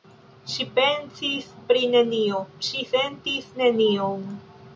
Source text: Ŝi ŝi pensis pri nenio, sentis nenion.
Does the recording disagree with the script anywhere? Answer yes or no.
yes